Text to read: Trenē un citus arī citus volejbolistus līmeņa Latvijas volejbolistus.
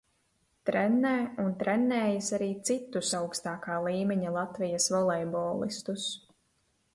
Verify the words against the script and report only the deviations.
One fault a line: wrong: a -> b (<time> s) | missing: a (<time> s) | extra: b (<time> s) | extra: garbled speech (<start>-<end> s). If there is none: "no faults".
wrong: citus -> trenējis (1.6 s)
wrong: volejbolistus -> augstākā (3.2 s)